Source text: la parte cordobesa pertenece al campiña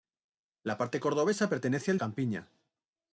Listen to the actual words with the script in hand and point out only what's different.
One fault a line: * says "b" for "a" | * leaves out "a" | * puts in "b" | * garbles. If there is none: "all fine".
all fine